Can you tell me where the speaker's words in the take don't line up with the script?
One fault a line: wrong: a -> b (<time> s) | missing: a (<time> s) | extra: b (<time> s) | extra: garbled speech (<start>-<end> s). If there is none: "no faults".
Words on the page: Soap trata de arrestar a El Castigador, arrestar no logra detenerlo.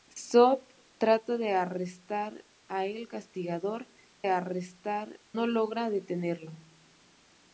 no faults